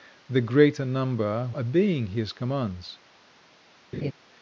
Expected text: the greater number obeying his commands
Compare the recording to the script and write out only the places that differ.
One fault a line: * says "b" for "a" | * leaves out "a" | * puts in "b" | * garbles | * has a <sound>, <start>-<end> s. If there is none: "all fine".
* has a laugh, 3.9-4.1 s